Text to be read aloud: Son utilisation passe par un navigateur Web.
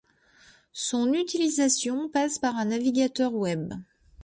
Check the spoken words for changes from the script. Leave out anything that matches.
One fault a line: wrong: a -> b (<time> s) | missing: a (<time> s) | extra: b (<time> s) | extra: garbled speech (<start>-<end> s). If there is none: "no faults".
no faults